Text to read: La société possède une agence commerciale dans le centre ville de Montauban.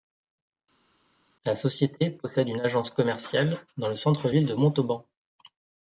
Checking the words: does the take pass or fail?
pass